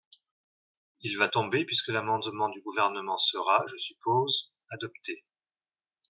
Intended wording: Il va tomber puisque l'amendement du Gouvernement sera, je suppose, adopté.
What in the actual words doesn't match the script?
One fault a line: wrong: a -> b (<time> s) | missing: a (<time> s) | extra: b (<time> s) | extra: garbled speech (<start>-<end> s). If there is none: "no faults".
no faults